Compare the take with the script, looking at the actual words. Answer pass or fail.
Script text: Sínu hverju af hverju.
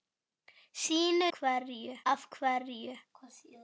pass